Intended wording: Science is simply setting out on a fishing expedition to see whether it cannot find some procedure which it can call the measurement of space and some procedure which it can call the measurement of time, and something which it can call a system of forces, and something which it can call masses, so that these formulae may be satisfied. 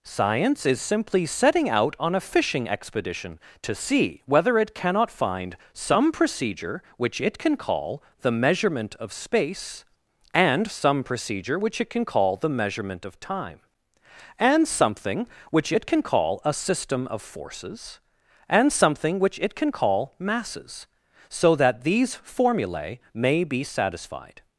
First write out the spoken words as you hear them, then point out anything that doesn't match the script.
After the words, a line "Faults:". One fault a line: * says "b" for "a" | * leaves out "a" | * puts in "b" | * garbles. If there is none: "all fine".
Science is simply setting out on a fishing expedition to see whether it cannot find some procedure which it can call the measurement of space and some procedure which it can call the measurement of time, and something which it can call a system of forces, and something which it can call masses, so that these formulae may be satisfied.
Faults:
all fine